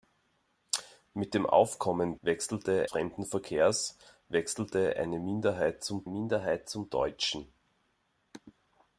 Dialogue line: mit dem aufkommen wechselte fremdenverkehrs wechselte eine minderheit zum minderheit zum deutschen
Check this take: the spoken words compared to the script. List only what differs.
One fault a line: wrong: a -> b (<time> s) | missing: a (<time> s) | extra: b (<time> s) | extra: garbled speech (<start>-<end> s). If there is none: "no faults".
no faults